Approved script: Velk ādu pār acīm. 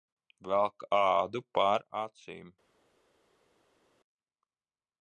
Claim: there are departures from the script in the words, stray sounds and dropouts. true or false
false